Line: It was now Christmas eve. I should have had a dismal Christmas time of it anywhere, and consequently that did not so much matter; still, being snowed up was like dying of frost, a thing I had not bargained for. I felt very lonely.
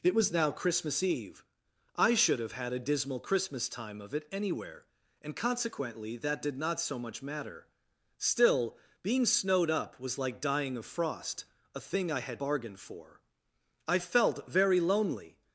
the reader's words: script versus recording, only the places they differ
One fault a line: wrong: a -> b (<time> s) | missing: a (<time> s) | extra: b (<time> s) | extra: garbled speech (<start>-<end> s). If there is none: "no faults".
missing: not (12.4 s)